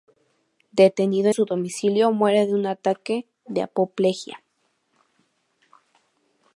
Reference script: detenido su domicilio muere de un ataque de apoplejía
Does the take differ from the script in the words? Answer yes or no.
no